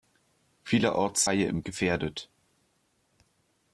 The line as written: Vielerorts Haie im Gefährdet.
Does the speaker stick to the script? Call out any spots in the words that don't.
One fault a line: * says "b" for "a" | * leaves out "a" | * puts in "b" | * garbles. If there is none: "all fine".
all fine